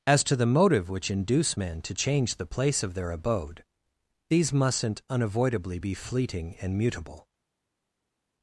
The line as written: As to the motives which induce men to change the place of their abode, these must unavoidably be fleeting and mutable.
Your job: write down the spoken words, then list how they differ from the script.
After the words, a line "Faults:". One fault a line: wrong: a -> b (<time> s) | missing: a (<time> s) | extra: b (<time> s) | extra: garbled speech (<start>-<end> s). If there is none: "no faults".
As to the motive which induce men to change the place of their abode, these mustn't unavoidably be fleeting and mutable.
Faults:
wrong: motives -> motive (0.5 s)
wrong: must -> mustn't (4.5 s)